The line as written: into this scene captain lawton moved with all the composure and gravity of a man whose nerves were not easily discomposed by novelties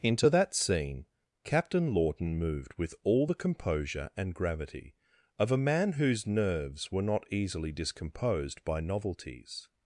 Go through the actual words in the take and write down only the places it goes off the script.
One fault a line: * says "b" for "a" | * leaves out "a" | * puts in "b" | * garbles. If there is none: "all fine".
* says "that" for "this"